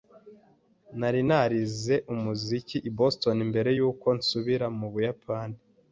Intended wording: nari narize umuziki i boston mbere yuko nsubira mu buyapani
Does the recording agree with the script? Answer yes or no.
yes